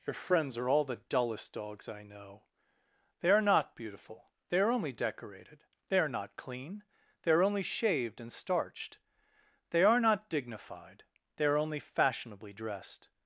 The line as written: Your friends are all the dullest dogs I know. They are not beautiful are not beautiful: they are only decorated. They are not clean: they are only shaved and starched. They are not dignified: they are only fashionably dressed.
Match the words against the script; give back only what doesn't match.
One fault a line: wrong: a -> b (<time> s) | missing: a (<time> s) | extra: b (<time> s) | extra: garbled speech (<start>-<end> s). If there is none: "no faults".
missing: are not beautiful (4.3 s)